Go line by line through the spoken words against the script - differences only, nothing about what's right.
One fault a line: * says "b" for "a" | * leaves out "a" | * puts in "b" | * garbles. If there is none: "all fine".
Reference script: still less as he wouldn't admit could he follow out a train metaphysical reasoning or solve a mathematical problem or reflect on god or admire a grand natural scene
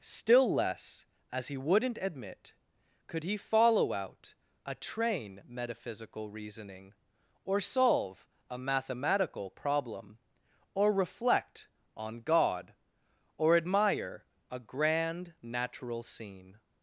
all fine